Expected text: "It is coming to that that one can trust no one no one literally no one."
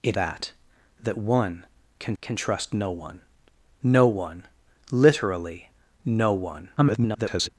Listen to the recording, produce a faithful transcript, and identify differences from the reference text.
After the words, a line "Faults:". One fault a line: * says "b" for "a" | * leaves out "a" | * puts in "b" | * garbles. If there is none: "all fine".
"It that that one can can trust no one no one literally no one." [garbled]
Faults:
* leaves out "is coming to"
* puts in "can"
* garbles